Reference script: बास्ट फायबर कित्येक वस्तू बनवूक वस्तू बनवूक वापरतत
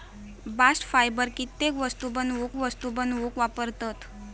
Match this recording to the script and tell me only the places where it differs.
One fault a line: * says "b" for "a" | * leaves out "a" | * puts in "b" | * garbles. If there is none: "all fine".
all fine